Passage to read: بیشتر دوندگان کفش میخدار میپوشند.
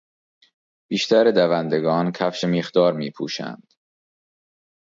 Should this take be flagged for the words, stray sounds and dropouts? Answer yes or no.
no